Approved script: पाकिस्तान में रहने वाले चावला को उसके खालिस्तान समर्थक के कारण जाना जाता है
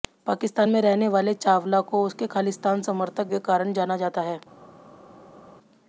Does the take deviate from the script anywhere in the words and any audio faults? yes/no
no